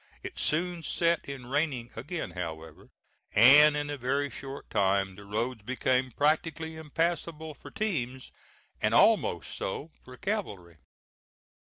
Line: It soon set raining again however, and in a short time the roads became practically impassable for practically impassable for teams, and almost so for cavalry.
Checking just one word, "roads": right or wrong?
right